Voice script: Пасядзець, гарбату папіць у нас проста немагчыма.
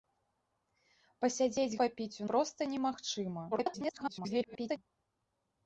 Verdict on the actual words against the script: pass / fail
fail